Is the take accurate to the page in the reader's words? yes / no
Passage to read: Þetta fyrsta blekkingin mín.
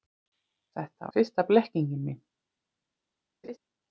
yes